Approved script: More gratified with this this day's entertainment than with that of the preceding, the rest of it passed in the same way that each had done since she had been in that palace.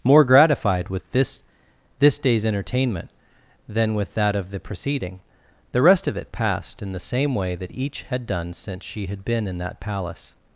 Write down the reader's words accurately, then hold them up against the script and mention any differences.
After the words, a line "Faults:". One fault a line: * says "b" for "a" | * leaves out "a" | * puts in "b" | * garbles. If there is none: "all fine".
More gratified with this this day's entertainment than with that of the preceding, the rest of it passed in the same way that each had done since she had been in that palace.
Faults:
all fine